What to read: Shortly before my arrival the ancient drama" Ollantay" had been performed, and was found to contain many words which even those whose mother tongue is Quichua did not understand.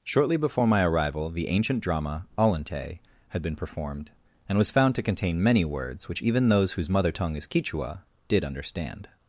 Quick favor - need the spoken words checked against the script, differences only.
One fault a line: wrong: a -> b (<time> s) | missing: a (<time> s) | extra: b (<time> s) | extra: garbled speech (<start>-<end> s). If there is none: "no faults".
missing: not (8.4 s)